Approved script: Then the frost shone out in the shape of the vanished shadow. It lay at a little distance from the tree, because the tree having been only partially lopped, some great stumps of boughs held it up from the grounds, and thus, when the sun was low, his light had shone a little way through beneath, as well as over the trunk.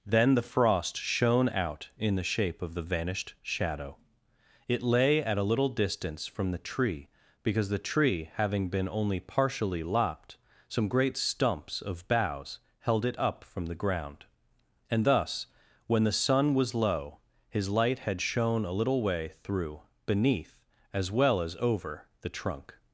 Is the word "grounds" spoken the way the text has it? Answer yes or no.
no